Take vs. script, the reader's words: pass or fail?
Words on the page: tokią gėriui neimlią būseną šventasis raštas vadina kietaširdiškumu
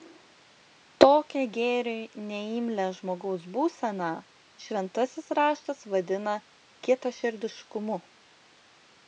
fail